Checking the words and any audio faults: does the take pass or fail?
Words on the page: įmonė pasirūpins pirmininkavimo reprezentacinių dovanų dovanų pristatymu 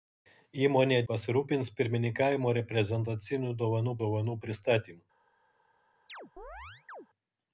fail